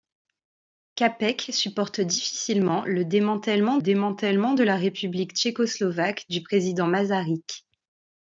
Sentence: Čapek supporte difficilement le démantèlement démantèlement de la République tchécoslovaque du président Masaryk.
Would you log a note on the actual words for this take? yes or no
no